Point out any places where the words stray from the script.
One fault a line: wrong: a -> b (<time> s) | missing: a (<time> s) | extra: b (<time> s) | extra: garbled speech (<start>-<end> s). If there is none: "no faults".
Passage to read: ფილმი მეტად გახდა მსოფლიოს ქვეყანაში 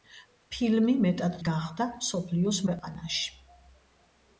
no faults